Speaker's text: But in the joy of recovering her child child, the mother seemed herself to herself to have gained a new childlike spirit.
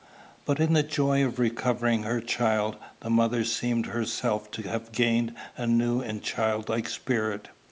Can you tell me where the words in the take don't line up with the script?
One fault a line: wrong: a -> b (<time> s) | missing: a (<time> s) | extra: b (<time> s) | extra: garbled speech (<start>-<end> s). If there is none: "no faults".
missing: child (2.8 s)
missing: herself to (4.6 s)
extra: and (6.0 s)